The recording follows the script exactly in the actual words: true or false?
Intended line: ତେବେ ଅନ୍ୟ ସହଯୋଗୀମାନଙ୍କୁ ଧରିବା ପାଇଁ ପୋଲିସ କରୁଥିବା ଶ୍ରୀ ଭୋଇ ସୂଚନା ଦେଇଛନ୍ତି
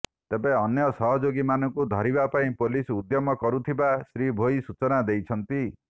false